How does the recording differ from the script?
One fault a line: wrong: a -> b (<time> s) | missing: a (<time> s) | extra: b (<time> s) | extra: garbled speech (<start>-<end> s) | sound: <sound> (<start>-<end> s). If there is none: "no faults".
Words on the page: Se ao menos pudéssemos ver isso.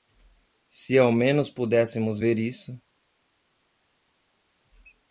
no faults